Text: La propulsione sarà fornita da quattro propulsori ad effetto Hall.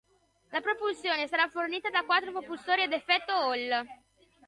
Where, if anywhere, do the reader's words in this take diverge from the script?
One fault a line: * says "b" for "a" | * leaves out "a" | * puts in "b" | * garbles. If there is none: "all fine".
all fine